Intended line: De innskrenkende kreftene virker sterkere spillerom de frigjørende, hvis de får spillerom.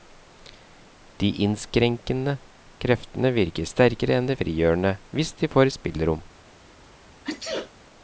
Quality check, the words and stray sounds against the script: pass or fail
fail